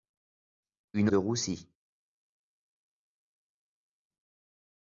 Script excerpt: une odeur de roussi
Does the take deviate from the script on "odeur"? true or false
true